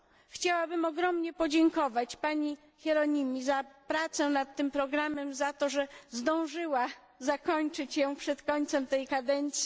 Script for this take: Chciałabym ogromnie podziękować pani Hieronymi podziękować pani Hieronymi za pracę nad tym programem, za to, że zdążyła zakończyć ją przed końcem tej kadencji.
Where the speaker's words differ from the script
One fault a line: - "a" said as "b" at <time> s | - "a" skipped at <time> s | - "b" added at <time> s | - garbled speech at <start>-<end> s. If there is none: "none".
- "podziękować pani Hieronymi" skipped at 3.4 s